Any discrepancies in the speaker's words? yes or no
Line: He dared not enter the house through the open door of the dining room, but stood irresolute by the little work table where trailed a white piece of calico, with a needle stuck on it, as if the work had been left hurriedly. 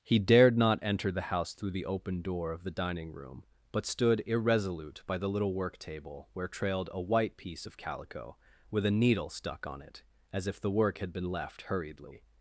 no